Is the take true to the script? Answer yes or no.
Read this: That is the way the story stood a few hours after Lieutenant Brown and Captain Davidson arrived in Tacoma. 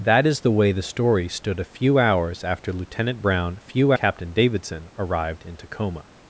no